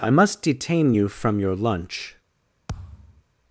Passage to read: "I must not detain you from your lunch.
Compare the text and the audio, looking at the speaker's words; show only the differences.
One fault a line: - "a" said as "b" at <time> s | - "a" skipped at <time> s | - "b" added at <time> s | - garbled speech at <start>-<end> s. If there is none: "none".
- "not" skipped at 0.4 s